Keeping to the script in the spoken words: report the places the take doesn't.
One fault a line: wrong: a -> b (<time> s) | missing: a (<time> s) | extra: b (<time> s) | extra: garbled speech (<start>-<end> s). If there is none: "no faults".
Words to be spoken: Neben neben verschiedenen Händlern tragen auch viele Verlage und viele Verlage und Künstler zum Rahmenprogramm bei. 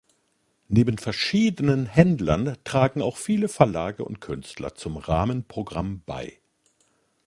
missing: neben (1.0 s)
missing: viele Verlage und (4.2 s)